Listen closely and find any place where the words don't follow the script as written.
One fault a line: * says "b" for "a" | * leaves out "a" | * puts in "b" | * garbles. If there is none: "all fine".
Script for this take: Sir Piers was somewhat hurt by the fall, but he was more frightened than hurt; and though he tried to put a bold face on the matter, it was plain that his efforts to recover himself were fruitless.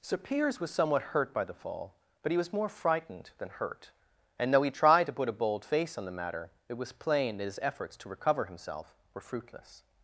all fine